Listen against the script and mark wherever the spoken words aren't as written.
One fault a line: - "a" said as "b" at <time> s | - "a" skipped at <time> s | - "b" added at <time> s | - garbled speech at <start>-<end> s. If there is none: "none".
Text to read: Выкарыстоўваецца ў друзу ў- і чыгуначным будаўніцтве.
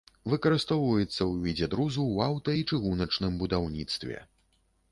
- "відзе" added at 1.4 s
- "аўта" added at 2.3 s